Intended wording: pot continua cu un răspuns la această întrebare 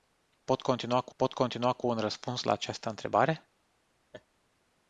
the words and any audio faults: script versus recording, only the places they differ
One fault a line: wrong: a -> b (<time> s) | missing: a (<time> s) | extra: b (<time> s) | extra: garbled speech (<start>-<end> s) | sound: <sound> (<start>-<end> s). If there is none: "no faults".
extra: pot continua cu (1.1 s)
sound: laugh (4.1-4.3 s)